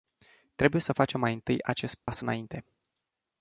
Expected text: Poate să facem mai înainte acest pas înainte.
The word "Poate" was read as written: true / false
false